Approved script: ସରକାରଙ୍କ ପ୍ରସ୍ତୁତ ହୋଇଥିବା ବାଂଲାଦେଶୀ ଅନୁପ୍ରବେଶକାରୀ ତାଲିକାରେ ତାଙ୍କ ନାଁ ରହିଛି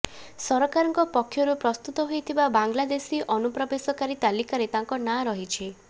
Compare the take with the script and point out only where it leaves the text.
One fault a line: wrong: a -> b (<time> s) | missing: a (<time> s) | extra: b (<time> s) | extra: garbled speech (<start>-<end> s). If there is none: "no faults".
extra: ପକ୍ଷରୁ (1.1 s)